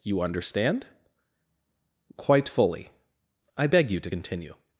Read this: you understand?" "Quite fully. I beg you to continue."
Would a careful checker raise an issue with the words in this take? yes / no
no